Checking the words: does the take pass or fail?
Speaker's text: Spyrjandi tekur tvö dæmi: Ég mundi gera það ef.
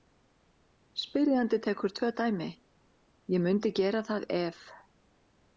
pass